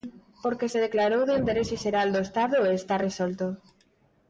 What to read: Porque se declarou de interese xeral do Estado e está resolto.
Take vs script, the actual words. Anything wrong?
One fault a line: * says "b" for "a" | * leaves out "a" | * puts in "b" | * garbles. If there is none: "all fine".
all fine